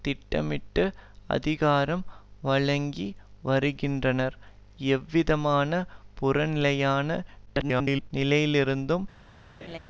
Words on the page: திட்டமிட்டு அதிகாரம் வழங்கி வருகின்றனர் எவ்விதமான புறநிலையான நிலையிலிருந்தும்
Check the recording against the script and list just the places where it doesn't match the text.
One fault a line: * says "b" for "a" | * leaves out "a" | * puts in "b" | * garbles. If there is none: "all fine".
* garbles